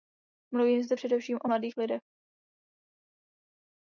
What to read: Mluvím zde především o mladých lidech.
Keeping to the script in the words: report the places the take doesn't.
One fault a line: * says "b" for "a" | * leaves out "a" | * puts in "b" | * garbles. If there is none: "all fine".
all fine